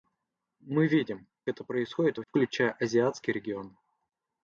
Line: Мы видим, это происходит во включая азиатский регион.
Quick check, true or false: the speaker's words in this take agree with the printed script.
true